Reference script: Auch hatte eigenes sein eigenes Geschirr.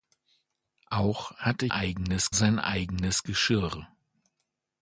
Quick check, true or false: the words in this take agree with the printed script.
true